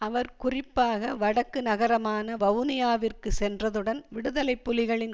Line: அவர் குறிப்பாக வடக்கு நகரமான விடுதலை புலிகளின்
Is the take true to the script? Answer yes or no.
no